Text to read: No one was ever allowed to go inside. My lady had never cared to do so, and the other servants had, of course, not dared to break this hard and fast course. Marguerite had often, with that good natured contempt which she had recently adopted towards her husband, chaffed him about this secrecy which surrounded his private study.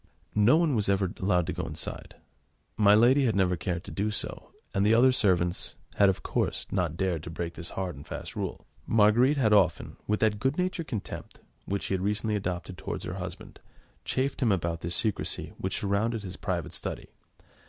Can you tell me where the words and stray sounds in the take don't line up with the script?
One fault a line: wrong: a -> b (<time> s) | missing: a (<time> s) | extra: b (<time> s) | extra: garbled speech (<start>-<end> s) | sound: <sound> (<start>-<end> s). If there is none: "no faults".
wrong: course -> rule (8.3 s)